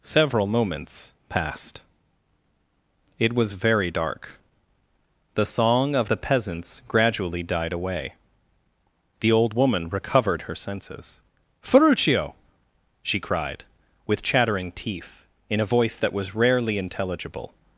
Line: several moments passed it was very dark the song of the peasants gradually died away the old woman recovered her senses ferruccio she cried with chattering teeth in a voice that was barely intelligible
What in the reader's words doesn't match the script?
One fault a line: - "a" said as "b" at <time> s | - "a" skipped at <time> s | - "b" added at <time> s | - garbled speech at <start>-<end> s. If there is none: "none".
- "barely" said as "rarely" at 16.3 s